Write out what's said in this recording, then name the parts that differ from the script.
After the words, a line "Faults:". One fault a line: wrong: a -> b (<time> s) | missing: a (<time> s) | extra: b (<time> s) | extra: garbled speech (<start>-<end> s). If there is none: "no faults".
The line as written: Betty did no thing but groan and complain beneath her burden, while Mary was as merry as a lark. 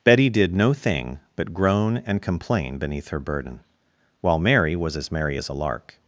Betty did no thing but groan and complain beneath her burden, while Mary was as merry as a lark.
Faults:
no faults